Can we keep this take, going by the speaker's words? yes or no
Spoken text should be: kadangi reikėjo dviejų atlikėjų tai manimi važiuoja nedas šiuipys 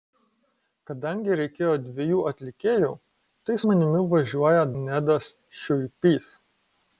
yes